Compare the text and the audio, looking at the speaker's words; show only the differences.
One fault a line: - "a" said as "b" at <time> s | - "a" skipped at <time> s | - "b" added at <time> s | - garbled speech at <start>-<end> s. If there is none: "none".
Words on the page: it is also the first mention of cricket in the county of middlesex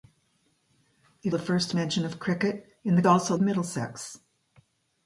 - "is also" skipped at 1.4 s
- "county" said as "also" at 3.0 s